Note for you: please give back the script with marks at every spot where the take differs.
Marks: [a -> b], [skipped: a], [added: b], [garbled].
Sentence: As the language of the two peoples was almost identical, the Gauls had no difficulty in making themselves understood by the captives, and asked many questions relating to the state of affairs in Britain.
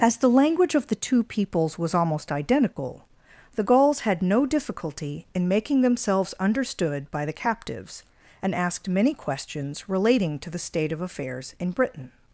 As the language of the two peoples was almost identical, the Gauls had no difficulty in making themselves understood by the captives, and asked many questions relating to the state of affairs in Britain.